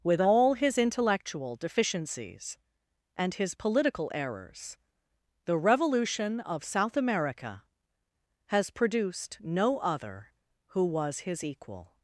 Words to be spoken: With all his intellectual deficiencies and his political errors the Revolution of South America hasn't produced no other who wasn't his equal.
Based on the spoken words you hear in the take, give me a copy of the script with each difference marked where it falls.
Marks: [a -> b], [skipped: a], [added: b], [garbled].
With all his intellectual deficiencies and his political errors the Revolution of South America [hasn't -> has] produced no other who [wasn't -> was] his equal.